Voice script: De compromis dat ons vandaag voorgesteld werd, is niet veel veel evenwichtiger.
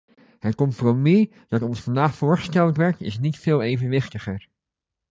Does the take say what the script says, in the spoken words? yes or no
no